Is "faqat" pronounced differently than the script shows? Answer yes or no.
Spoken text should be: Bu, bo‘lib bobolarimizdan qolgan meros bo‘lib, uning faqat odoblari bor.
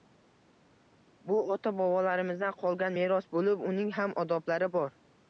yes